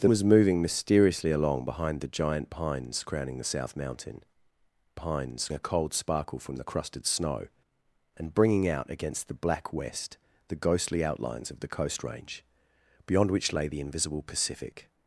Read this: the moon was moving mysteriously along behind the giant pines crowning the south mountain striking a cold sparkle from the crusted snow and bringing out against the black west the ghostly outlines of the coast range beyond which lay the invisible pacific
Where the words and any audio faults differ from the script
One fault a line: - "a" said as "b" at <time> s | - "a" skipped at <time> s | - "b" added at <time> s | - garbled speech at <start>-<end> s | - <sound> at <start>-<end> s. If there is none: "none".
- "moon" skipped at 0.1 s
- "striking" said as "pines" at 5.0 s